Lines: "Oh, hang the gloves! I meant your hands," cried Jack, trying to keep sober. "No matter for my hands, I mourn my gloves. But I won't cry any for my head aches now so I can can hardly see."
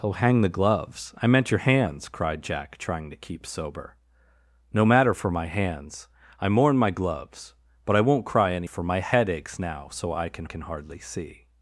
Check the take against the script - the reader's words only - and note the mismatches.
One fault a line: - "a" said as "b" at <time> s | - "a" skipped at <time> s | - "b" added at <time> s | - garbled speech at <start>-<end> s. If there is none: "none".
none